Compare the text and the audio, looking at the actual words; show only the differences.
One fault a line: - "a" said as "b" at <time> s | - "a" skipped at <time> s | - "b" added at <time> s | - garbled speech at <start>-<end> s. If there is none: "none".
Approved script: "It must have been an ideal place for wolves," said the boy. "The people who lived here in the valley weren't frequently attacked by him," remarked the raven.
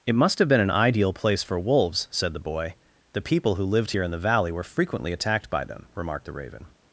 - "weren't" said as "were" at 4.5 s
- "him" said as "them" at 5.6 s